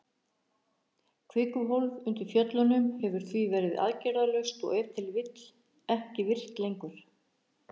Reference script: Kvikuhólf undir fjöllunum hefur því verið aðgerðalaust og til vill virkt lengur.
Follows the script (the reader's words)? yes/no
no